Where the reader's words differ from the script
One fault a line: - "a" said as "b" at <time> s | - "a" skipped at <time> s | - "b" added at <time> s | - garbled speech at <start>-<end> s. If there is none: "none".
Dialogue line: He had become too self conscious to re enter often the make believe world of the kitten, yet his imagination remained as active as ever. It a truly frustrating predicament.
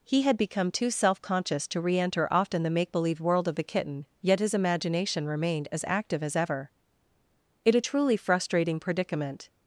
none